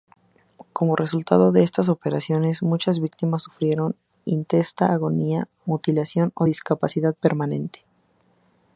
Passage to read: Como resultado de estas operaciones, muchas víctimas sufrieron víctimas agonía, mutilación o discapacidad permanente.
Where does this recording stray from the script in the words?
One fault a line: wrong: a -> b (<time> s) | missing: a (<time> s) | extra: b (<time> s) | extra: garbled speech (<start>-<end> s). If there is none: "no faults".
wrong: víctimas -> intensa (4.2 s)